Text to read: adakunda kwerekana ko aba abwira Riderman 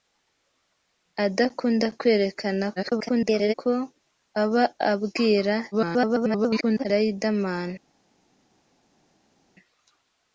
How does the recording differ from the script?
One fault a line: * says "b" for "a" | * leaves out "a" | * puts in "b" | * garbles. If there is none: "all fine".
* garbles
* garbles